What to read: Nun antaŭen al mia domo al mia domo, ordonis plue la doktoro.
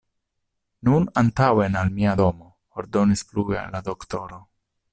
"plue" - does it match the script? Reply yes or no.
yes